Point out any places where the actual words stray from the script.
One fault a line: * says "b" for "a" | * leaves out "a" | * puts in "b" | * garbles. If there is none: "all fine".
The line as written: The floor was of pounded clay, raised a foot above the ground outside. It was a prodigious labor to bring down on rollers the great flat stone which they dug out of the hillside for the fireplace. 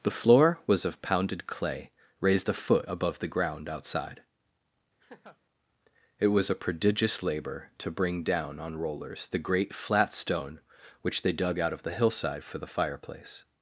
all fine